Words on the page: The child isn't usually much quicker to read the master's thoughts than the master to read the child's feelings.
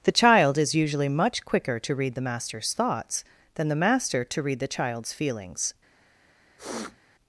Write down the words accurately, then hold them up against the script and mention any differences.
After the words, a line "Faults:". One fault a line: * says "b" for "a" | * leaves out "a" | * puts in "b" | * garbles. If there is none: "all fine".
The child is usually much quicker to read the master's thoughts than the master to read the child's feelings.
Faults:
* says "is" for "isn't"